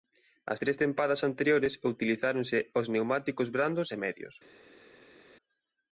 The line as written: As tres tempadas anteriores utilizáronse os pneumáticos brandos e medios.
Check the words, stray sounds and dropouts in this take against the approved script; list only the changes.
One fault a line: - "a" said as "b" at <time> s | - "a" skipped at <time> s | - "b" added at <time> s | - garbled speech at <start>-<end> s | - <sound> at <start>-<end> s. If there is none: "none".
none